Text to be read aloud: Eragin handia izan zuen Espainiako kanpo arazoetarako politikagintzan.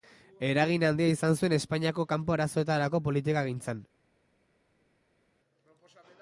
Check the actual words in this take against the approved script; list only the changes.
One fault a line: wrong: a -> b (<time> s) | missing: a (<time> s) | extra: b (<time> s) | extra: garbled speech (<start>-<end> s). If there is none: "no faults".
no faults